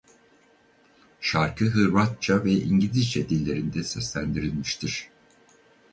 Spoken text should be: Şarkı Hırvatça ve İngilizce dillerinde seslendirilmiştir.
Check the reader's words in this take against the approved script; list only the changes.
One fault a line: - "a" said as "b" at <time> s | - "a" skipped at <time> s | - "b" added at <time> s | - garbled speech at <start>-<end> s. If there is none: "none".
none